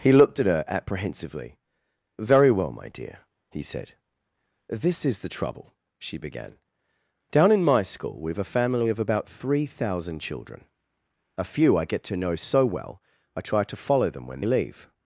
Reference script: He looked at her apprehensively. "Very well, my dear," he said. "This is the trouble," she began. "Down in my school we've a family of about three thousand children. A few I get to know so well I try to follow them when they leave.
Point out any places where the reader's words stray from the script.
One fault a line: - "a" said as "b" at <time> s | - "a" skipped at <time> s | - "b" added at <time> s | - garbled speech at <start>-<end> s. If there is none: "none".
- "they" skipped at 14.4 s